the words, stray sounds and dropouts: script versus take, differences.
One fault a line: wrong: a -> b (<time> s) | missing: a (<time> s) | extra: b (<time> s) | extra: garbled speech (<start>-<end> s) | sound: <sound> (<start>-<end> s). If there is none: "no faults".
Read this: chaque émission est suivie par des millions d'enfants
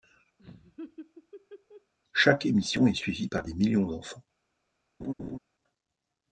sound: laugh (0.4-1.9 s)
sound: laugh (5.0-5.4 s)